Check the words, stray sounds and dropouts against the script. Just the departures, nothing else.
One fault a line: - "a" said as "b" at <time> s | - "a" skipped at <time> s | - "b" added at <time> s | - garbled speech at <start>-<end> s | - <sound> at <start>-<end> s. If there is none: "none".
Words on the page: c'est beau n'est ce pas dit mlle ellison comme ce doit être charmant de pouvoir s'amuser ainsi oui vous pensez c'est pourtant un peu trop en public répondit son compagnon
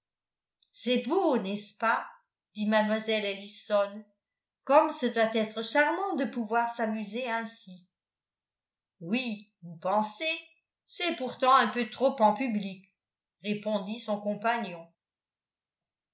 none